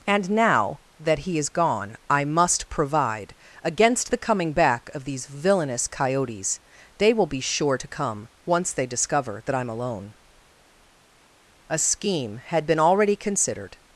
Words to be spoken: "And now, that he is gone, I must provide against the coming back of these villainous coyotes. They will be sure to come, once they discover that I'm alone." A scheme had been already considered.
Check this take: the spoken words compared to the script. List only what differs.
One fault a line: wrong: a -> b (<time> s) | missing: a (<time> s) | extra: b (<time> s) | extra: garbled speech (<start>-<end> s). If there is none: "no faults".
no faults